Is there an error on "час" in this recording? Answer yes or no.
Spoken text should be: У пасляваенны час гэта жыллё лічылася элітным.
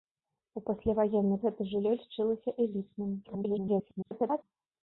yes